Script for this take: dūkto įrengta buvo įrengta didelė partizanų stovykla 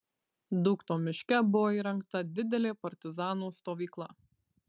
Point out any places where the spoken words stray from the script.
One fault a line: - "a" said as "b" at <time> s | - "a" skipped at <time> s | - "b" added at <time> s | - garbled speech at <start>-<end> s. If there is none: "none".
- "įrengta" said as "miške" at 1.0 s